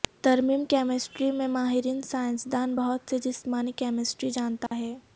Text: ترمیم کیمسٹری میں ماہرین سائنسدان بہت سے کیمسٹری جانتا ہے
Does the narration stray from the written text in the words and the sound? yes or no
yes